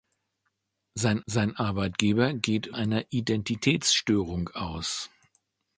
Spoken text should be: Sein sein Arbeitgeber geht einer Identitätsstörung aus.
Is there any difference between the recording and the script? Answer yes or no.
no